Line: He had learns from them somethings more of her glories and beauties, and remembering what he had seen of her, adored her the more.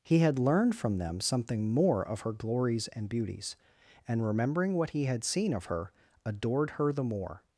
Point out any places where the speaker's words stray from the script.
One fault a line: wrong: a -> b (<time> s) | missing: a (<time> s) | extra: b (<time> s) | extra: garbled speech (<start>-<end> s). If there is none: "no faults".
wrong: learns -> learned (0.4 s)
wrong: somethings -> something (1.2 s)